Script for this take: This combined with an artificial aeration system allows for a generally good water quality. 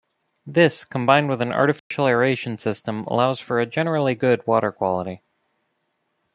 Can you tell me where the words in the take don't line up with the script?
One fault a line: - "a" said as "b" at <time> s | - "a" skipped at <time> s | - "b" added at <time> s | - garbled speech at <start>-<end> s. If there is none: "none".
none